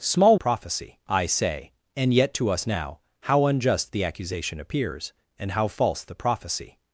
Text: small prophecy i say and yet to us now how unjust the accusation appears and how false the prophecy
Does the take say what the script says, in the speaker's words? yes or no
yes